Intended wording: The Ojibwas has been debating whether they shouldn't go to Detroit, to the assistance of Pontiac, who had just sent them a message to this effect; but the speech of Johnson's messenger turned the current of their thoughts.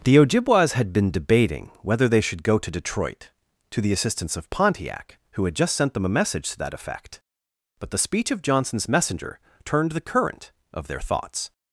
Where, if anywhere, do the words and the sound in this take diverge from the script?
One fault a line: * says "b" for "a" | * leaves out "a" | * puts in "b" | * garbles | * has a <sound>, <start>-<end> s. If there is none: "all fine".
* says "had" for "has"
* says "should" for "shouldn't"
* says "that" for "this"